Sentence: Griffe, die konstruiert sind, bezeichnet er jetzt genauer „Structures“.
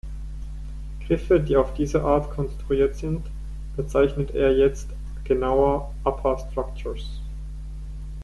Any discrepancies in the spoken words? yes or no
yes